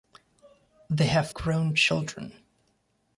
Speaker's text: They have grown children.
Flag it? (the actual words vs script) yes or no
no